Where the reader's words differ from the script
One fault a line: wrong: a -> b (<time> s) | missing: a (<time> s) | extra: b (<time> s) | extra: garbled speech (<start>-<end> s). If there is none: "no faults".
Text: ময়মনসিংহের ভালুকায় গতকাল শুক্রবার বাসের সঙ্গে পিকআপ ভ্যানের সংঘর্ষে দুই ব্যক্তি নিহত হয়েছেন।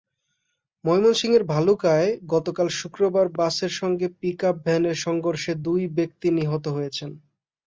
no faults